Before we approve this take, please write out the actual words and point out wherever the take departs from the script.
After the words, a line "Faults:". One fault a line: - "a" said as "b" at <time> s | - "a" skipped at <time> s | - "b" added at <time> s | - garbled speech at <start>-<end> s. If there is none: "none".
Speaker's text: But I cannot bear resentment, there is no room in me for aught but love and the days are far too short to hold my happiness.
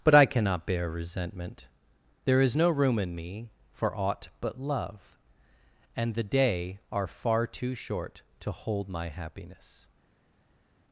But I cannot bear resentment, there is no room in me for aught but love and the day are far too short to hold my happiness.
Faults:
- "days" said as "day" at 6.2 s